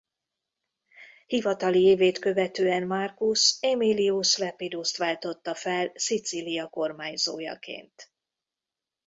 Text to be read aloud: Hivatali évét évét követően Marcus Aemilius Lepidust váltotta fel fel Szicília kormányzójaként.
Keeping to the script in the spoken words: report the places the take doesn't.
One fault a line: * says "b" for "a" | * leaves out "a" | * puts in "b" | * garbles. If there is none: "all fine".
* leaves out "évét"
* leaves out "fel"